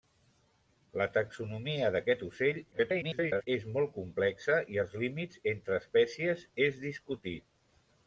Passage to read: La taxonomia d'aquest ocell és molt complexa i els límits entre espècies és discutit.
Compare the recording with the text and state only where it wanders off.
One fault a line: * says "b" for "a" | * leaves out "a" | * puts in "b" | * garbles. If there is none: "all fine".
* garbles